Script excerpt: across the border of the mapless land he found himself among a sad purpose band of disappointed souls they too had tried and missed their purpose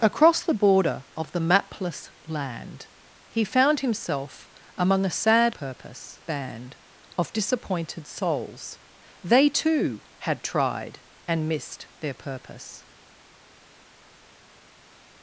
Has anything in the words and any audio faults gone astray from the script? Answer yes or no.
no